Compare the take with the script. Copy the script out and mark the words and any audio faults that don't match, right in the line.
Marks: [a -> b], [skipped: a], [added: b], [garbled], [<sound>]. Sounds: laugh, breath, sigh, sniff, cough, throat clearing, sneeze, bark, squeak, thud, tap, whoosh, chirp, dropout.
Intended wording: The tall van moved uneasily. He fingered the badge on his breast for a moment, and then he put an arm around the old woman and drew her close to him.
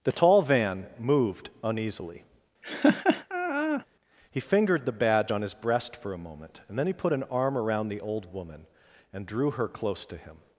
The tall van moved uneasily. [laugh] He fingered the badge on his breast for a moment, and then he put an arm around the old woman and drew her close to him.